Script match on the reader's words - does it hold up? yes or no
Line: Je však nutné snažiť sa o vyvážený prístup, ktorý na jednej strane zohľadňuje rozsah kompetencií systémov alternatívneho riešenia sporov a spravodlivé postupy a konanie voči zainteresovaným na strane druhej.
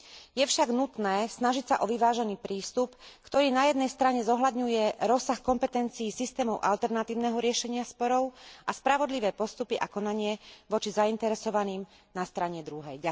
yes